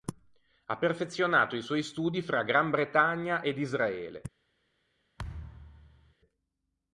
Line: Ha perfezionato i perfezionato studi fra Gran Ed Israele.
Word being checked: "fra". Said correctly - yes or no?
yes